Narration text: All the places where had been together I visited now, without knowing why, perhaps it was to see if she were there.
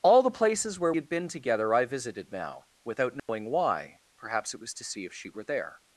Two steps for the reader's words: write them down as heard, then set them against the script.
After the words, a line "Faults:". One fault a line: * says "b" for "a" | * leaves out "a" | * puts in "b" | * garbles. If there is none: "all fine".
All the places where had been together I visited now, without knowing why, perhaps it was to see if she were there.
Faults:
all fine